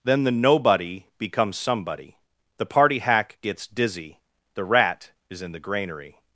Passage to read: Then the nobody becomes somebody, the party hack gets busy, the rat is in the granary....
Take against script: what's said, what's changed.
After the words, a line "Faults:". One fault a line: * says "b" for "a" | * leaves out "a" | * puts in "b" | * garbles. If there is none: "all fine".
Then the nobody becomes somebody, the party hack gets dizzy, the rat is in the granary....
Faults:
* says "dizzy" for "busy"